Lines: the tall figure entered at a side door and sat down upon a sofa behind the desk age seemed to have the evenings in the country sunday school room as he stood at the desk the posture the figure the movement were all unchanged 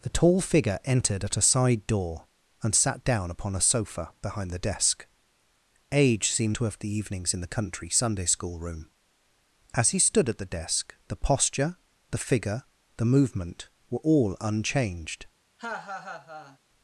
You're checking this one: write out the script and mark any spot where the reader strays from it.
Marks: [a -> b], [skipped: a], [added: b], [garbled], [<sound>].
the tall figure entered at a side door and sat down upon a sofa behind the desk age seemed to have the evenings in the country sunday school room as he stood at the desk the posture the figure the movement were all unchanged [laugh]